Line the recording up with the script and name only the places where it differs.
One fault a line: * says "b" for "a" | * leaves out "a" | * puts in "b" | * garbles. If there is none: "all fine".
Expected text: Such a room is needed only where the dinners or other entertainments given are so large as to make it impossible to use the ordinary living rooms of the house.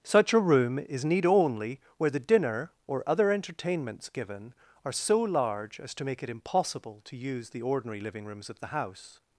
* says "need" for "needed"
* says "dinner" for "dinners"